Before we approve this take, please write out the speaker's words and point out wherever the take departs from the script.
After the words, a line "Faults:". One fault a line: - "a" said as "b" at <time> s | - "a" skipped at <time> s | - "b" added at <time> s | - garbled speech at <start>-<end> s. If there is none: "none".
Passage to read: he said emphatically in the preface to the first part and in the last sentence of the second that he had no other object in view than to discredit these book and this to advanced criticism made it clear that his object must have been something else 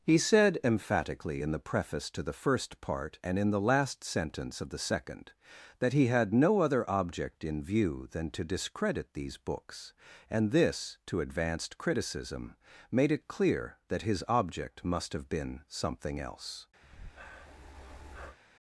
he said emphatically in the preface to the first part and in the last sentence of the second that he had no other object in view than to discredit these books and this to advanced criticism made it clear that his object must have been something else
Faults:
- "book" said as "books" at 9.4 s